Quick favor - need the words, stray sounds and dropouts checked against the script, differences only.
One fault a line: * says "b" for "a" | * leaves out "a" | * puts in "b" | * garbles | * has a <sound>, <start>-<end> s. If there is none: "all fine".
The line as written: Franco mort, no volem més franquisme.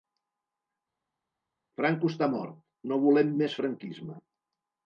* puts in "està"